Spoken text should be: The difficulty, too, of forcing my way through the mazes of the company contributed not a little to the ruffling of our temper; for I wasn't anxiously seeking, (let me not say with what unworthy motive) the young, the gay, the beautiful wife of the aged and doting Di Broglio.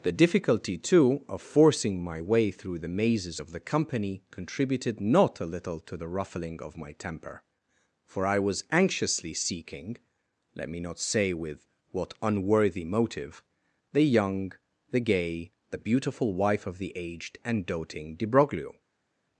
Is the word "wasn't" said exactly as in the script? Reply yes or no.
no